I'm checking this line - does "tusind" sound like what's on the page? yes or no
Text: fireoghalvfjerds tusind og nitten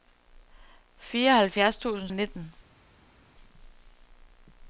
yes